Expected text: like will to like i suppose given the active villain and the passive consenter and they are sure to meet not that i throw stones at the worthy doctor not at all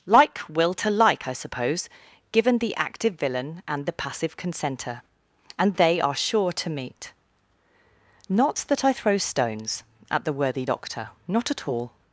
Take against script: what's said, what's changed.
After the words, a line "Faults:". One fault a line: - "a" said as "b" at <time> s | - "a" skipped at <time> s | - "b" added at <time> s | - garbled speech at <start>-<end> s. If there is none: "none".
like will to like i suppose given the active villain and the passive consenter and they are sure to meet not that i throw stones at the worthy doctor not at all
Faults:
none